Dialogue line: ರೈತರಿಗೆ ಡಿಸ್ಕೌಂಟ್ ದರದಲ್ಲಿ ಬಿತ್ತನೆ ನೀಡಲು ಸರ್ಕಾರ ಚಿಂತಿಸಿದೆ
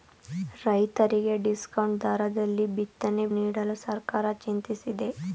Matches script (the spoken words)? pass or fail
pass